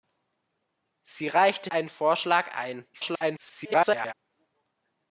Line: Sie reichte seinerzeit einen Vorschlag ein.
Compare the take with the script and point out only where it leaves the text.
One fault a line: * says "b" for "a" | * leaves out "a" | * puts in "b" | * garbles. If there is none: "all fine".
* leaves out "seinerzeit"
* garbles